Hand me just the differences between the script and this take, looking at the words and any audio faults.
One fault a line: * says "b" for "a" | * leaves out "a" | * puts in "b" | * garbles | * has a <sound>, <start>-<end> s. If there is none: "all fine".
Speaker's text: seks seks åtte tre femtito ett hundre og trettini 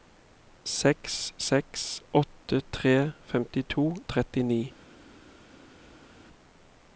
* leaves out "ett hundre"